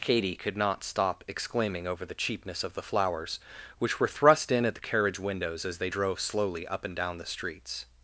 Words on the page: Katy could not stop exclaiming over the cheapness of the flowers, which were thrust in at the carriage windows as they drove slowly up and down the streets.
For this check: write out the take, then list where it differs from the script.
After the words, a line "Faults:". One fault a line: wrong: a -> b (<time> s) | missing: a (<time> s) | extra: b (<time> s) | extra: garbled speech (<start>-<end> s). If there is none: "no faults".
Katy could not stop exclaiming over the cheapness of the flowers, which were thrust in at the carriage windows as they drove slowly up and down the streets.
Faults:
no faults